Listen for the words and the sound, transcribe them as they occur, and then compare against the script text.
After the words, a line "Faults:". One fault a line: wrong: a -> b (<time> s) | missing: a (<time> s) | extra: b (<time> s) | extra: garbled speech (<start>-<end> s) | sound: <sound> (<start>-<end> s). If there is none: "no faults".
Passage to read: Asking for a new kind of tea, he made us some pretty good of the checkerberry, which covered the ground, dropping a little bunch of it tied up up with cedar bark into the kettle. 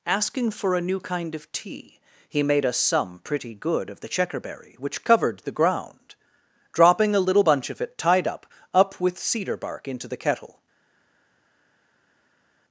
Asking for a new kind of tea, he made us some pretty good of the checkerberry, which covered the ground, dropping a little bunch of it tied up up with cedar bark into the kettle.
Faults:
no faults